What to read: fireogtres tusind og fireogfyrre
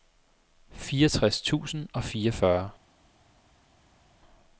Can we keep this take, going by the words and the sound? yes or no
yes